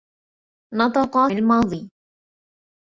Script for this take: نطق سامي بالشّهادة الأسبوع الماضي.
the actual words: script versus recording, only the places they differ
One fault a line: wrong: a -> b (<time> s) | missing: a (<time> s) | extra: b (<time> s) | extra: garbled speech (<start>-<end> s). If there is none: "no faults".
missing: سامي بالشّهادة الأسبوع (1.3 s)